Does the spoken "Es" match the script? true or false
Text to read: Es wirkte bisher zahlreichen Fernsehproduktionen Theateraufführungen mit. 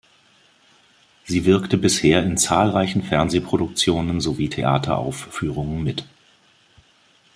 false